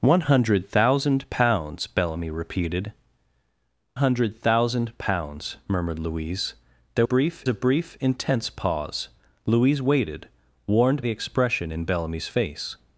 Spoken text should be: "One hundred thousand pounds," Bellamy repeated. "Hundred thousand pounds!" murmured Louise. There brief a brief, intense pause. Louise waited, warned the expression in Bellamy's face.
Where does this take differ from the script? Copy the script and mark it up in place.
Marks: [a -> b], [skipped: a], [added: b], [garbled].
"One hundred thousand pounds," Bellamy repeated. "Hundred thousand pounds!" murmured Louise. There brief a brief, intense pause. Louise waited, warned the expression in Bellamy's face.